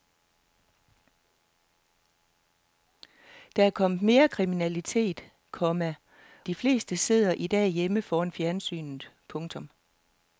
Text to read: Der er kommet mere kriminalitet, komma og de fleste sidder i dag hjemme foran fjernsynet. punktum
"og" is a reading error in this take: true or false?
true